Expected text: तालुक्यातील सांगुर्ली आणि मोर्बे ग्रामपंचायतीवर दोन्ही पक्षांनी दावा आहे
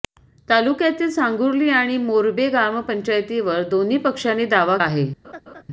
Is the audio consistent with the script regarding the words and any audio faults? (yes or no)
no